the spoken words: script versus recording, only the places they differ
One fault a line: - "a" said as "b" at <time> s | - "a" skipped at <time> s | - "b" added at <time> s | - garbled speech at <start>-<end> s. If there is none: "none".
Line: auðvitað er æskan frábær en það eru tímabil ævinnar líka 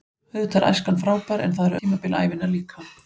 none